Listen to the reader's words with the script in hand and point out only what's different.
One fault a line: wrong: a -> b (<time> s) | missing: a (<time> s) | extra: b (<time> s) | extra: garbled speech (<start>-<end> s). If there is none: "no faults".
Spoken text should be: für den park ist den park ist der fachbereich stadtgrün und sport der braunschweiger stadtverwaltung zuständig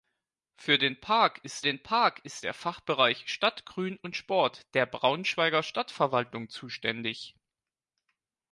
no faults